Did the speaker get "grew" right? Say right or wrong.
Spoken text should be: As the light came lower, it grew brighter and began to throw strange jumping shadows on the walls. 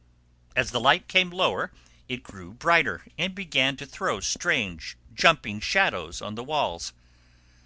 right